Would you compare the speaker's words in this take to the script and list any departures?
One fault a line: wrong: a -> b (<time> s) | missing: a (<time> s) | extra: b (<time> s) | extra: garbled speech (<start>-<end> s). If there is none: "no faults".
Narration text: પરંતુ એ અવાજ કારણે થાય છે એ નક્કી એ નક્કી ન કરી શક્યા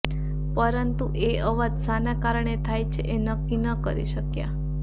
extra: શાના (1.8 s)
missing: એ નક્કી (3.6 s)